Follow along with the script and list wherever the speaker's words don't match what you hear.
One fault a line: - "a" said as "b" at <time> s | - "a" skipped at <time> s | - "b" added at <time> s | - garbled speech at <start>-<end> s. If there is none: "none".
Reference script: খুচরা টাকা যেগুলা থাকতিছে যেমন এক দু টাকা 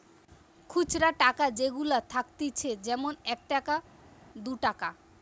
- "টাকা" added at 3.5 s